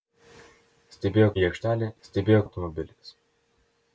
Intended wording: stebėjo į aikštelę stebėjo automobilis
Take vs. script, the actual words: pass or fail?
pass